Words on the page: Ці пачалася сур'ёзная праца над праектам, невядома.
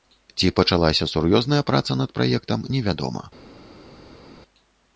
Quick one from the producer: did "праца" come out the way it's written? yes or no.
yes